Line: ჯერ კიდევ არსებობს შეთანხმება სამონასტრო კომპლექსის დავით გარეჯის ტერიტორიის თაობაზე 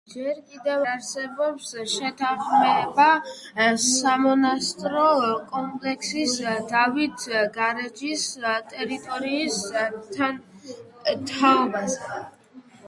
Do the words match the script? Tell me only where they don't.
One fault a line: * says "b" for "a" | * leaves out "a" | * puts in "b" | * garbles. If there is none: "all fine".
all fine